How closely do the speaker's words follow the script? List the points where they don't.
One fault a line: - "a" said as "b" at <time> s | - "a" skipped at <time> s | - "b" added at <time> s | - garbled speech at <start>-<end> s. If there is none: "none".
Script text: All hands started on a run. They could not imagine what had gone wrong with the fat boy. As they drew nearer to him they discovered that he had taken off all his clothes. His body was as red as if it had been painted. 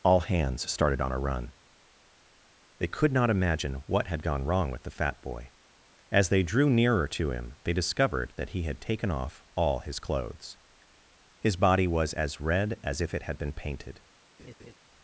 none